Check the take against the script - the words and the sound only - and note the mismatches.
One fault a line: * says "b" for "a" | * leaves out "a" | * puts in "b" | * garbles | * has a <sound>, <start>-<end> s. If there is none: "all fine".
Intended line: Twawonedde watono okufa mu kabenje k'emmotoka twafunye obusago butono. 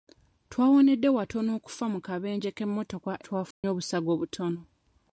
* has a dropout, 3.5-3.6 s